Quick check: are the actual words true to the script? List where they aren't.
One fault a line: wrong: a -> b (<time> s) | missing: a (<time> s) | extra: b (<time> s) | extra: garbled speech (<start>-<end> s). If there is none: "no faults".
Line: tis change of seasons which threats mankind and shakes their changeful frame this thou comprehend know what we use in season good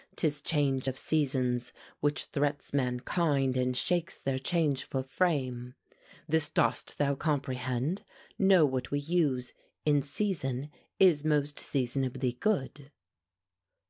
extra: dost (6.5 s)
extra: is most seasonably (11.0 s)